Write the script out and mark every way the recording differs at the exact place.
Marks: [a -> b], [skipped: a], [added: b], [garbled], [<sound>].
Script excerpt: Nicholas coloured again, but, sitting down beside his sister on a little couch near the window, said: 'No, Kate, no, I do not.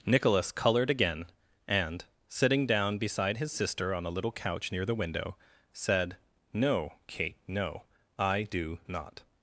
Nicholas coloured again, [but, -> and] sitting down beside his sister on a little couch near the window, said: 'No, Kate, no, I do not.